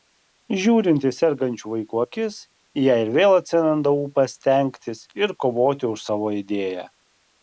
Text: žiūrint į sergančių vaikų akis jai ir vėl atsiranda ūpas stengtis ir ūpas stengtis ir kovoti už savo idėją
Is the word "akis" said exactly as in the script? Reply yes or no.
yes